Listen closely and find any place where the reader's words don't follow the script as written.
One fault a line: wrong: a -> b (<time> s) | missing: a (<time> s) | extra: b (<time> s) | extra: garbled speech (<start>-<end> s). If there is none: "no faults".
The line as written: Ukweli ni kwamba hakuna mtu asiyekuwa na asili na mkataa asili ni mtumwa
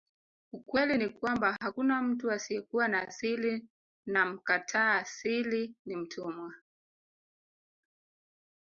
no faults